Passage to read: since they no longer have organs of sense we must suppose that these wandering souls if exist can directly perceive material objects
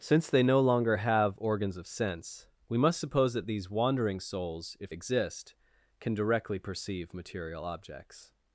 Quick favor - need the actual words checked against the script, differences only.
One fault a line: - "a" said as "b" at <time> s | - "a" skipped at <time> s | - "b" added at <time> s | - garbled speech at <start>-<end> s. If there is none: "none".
none